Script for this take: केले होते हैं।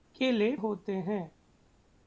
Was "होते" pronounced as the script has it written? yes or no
yes